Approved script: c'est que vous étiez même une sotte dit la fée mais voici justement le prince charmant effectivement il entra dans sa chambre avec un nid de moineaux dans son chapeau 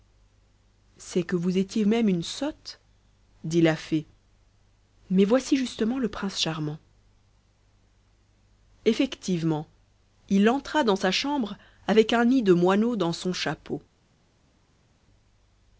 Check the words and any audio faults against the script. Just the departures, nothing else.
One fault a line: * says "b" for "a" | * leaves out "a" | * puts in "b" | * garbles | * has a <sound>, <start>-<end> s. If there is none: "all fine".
all fine